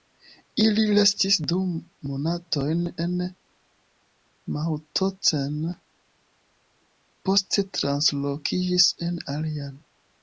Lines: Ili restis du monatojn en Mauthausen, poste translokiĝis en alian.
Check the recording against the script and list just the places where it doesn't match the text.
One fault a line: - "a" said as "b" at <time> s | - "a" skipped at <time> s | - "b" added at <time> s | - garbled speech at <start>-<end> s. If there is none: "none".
none